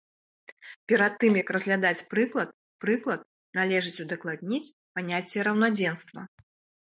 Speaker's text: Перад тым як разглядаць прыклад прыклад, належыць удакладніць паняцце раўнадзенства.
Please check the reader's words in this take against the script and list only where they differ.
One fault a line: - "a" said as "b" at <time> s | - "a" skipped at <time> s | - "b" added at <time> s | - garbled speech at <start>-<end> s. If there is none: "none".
none